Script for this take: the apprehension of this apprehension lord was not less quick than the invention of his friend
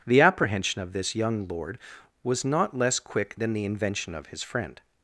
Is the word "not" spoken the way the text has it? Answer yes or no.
yes